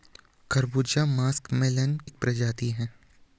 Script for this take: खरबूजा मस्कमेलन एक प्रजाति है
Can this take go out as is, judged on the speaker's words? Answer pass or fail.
pass